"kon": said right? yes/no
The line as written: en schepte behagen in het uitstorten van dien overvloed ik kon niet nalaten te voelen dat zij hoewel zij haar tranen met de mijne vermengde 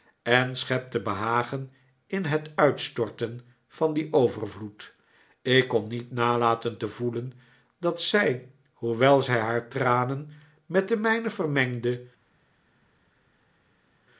yes